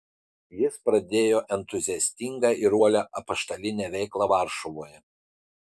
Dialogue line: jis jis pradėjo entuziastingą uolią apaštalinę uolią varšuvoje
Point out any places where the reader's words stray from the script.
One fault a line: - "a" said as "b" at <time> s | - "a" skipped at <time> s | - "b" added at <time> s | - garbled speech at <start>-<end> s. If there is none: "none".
- "jis" skipped at 0.8 s
- "ir" added at 2.6 s
- "uolią" said as "veiklą" at 4.0 s